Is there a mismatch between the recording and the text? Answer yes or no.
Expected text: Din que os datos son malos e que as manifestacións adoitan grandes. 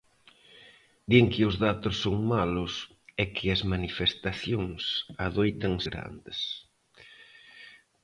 no